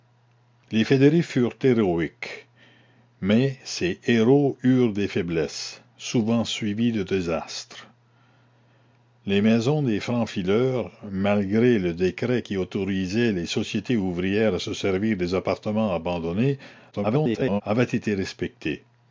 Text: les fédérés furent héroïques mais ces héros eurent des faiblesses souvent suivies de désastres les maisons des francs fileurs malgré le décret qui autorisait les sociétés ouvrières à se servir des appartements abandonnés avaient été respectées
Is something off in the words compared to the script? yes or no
yes